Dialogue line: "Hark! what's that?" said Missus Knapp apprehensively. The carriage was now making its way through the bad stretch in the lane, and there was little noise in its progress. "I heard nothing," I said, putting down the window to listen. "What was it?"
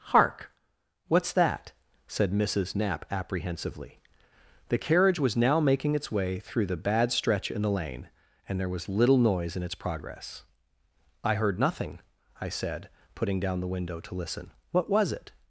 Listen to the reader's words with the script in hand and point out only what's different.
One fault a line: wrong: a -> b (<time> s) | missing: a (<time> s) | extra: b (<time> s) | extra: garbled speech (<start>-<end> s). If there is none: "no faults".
no faults